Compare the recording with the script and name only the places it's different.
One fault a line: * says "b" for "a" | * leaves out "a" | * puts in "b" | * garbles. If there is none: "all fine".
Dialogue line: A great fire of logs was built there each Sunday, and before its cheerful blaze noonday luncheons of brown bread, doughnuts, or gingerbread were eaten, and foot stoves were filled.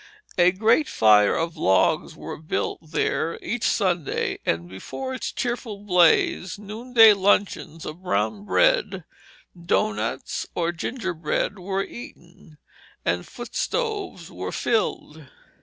all fine